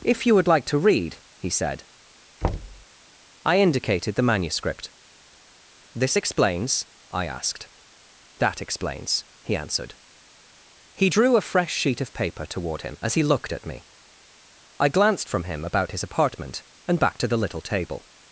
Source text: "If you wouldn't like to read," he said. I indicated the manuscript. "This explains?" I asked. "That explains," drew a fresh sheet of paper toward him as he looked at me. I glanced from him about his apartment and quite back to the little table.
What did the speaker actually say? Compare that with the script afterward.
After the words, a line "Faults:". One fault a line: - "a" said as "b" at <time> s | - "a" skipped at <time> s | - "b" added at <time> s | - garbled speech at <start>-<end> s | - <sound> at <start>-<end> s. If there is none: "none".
"If you would like to read," he said. I indicated the manuscript. "This explains?" I asked. "That explains," he answered. He drew a fresh sheet of paper toward him as he looked at me. I glanced from him about his apartment and back to the little table.
Faults:
- "wouldn't" said as "would" at 0.3 s
- thud at 2.4-2.9 s
- "he answered He" added at 9.4 s
- "quite" skipped at 17.0 s